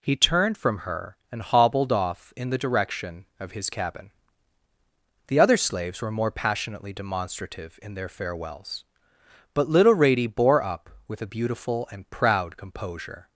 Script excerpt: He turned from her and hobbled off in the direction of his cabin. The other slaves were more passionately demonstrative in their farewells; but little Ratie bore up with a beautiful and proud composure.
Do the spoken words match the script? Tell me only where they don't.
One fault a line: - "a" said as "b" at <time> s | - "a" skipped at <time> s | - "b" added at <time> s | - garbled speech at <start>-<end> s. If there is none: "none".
none